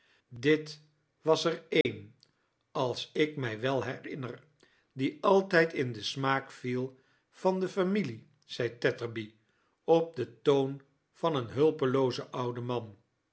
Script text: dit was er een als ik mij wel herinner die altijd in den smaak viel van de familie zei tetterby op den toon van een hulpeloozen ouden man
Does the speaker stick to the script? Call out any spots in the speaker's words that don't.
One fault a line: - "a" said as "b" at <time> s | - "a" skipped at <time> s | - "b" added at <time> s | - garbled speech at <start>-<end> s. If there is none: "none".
none